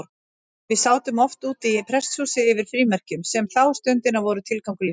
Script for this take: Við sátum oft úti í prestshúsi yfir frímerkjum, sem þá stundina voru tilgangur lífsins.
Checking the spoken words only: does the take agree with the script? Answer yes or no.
yes